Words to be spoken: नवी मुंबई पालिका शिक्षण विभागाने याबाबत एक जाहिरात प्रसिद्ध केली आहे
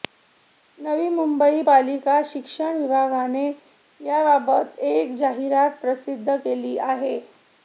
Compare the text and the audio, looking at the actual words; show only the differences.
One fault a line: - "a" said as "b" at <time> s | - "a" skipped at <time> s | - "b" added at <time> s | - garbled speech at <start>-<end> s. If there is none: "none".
none